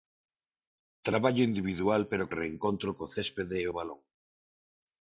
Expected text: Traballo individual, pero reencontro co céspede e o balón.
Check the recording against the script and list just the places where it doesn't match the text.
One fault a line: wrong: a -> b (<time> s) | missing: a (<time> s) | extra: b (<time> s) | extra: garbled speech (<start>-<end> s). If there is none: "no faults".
no faults